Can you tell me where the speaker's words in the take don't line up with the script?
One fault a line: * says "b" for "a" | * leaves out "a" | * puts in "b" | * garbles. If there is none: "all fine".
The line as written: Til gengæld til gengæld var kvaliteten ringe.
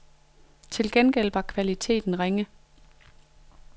* leaves out "til gengæld"